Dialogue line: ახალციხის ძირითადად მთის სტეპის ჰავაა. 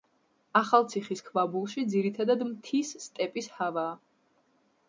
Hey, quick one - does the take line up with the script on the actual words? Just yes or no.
no